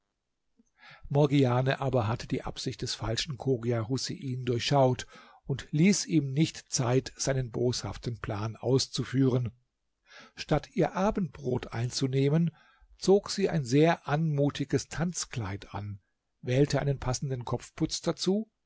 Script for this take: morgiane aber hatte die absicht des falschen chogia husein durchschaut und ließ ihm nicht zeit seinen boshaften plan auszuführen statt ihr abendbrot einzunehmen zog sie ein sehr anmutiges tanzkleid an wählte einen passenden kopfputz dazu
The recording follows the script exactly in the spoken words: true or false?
true